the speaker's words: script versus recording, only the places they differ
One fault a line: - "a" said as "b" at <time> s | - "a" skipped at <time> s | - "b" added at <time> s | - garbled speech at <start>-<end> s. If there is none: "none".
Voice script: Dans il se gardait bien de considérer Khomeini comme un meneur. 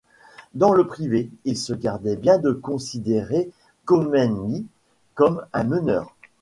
- "le Privé" added at 0.7 s